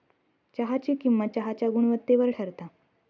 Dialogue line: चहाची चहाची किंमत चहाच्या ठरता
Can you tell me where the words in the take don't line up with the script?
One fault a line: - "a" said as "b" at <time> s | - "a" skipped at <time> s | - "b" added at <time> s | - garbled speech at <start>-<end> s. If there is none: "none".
- "चहाची" skipped at 0.9 s
- "गुणवत्तेवर" added at 1.7 s